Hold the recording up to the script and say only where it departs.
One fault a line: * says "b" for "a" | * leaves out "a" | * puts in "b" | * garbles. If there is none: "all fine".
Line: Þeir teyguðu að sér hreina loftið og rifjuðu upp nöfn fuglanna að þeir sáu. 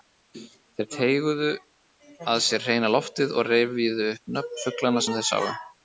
* says "sem" for "að"